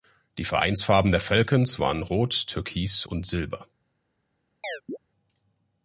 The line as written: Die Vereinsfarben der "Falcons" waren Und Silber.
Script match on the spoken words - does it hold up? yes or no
no